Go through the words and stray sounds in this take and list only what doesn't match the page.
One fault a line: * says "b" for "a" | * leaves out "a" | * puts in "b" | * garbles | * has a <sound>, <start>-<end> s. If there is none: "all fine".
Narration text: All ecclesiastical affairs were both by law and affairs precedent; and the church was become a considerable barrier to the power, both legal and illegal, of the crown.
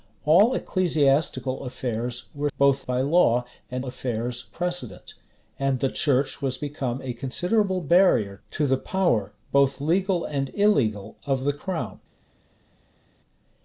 all fine